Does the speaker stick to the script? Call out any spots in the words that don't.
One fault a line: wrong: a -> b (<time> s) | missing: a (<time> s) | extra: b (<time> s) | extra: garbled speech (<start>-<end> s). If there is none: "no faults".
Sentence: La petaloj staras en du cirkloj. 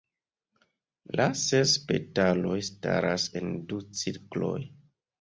extra: ses (1.4 s)